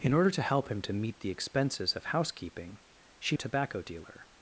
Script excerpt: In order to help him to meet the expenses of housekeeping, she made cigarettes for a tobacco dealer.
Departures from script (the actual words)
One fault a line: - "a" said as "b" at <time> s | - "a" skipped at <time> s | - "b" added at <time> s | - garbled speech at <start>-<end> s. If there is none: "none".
- "made cigarettes for" skipped at 3.4 s